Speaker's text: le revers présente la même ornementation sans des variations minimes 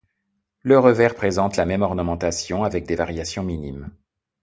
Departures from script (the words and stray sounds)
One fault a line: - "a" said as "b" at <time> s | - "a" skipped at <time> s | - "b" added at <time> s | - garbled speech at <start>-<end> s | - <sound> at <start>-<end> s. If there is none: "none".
- "sans" said as "avec" at 2.6 s